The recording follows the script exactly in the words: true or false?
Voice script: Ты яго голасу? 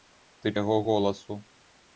true